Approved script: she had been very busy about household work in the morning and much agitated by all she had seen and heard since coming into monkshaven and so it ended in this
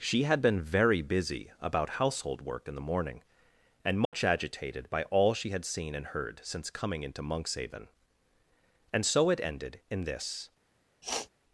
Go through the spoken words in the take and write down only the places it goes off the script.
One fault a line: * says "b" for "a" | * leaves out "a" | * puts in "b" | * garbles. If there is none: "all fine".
all fine